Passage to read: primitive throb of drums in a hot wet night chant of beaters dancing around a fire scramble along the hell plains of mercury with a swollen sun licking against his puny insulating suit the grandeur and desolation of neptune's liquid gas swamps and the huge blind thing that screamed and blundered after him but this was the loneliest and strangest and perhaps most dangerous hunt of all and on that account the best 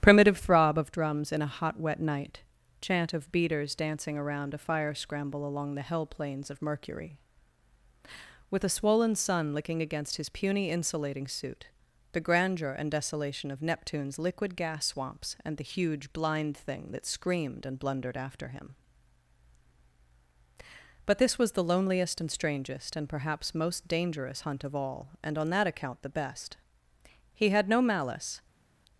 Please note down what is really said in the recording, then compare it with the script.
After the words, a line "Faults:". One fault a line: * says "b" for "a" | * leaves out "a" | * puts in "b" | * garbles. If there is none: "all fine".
primitive throb of drums in a hot wet night chant of beaters dancing around a fire scramble along the hell plains of mercury with a swollen sun licking against his puny insulating suit the grandeur and desolation of neptune's liquid gas swamps and the huge blind thing that screamed and blundered after him but this was the loneliest and strangest and perhaps most dangerous hunt of all and on that account the best he had no malice
Faults:
* puts in "he had no malice"